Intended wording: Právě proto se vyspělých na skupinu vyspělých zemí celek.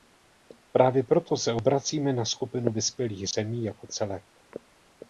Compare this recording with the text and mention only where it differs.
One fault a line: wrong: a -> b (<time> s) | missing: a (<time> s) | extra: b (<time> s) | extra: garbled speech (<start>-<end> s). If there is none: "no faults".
wrong: vyspělých -> obracíme (1.5 s)
extra: jako (3.6 s)